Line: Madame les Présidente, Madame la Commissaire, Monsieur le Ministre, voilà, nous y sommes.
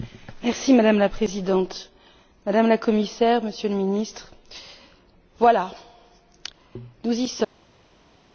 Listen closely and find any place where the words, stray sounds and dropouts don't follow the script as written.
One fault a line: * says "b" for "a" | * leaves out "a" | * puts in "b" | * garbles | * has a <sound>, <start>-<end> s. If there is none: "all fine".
* says "la" for "les"